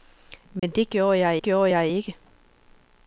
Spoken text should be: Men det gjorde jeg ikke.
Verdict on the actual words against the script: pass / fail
fail